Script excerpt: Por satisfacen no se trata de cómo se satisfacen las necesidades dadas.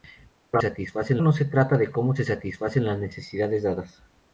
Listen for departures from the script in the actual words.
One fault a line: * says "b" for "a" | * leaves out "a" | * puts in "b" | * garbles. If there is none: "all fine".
all fine